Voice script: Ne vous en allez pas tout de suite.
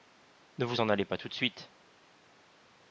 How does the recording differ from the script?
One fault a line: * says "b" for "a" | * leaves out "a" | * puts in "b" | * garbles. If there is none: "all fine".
all fine